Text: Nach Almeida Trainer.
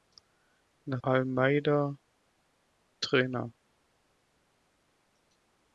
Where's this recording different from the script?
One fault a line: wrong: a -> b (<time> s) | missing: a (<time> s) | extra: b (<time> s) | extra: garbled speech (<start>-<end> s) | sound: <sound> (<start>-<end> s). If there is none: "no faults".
no faults